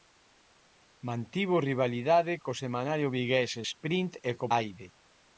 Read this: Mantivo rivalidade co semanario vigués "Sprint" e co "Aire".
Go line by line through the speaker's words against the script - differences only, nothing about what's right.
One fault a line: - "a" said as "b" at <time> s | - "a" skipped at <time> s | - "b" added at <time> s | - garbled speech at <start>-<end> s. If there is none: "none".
none